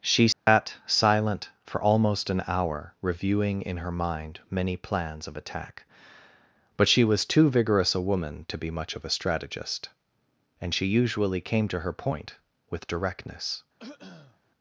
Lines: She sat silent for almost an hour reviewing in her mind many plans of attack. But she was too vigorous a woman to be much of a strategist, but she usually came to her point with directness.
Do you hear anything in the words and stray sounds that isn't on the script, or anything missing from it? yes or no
yes